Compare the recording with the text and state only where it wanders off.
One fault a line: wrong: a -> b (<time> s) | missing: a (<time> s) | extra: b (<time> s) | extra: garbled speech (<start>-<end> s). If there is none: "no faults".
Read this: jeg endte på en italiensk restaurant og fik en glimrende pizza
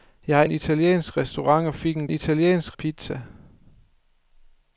missing: endte på (0.5 s)
wrong: glimrende -> italiensk (2.1 s)